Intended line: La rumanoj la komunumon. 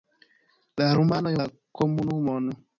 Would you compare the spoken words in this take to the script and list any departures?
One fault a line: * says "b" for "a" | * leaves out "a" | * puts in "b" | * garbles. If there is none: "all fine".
all fine